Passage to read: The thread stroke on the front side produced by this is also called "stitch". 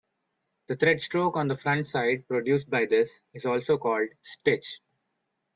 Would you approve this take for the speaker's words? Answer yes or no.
yes